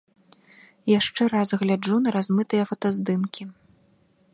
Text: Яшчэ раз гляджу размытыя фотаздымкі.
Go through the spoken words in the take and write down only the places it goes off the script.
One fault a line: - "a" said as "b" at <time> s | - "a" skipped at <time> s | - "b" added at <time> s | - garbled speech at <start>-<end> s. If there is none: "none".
- "на" added at 2.1 s